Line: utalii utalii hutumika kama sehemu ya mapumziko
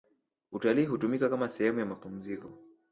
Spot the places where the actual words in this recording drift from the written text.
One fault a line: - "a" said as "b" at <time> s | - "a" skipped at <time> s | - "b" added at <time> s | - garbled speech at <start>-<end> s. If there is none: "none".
- "utalii" skipped at 0.9 s